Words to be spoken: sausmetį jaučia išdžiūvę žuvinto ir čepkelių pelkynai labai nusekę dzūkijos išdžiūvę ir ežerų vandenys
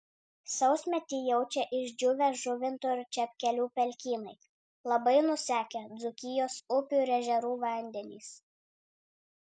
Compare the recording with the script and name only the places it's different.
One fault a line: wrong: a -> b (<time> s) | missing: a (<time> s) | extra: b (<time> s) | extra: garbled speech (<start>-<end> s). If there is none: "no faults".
wrong: išdžiūvę -> upių (6.8 s)